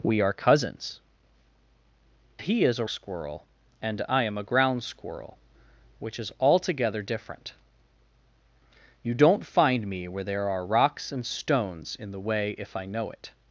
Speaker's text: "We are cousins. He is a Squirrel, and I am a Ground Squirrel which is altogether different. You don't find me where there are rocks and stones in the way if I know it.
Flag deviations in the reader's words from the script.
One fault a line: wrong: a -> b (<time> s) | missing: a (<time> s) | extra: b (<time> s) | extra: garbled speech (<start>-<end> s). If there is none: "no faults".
no faults